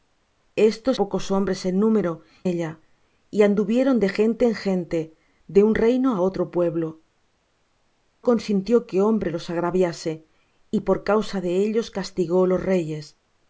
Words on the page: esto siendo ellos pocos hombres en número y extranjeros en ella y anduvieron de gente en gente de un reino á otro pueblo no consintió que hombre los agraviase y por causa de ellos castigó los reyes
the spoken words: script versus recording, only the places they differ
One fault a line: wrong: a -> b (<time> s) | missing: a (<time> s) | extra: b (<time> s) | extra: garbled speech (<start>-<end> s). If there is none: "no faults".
missing: siendo ellos (0.9 s)
missing: y extranjeros en (2.2 s)
missing: no (7.0 s)